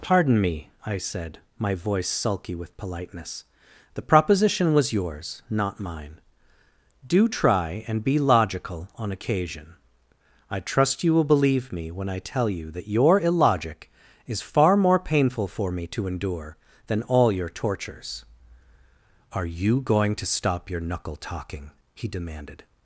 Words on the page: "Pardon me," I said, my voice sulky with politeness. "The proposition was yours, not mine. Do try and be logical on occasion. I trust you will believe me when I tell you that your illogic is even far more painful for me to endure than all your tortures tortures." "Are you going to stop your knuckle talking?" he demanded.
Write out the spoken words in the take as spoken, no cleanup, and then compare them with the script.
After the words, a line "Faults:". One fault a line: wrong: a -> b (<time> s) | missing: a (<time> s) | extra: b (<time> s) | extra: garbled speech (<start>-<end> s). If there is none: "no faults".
"Pardon me," I said, my voice sulky with politeness. "The proposition was yours, not mine. Do try and be logical on occasion. I trust you will believe me when I tell you that your illogic is far more painful for me to endure than all your tortures." "Are you going to stop your knuckle talking?" he demanded.
Faults:
missing: even (14.4 s)
missing: tortures (18.2 s)